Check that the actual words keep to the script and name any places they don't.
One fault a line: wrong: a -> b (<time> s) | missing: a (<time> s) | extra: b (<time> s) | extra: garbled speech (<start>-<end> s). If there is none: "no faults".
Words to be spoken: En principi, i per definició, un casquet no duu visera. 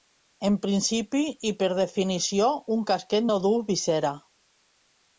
no faults